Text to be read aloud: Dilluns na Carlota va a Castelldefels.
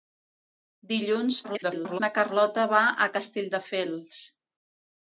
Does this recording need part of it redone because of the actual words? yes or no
yes